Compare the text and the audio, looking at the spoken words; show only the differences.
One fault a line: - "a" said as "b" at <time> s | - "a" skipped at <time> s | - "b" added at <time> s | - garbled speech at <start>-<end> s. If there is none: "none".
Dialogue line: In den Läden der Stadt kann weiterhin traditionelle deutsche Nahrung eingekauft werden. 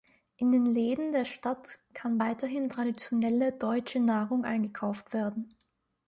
none